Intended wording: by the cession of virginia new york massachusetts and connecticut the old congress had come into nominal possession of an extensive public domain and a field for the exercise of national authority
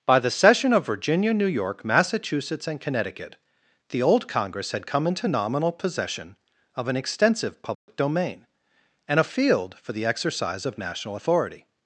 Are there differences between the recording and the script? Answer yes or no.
no